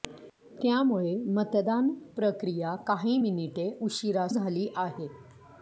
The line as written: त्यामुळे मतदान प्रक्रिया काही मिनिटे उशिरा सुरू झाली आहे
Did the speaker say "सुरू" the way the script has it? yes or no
no